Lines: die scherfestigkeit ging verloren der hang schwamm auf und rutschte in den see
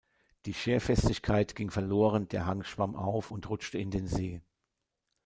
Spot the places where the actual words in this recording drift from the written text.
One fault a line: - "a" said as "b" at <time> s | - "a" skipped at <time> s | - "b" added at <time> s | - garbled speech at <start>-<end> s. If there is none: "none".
none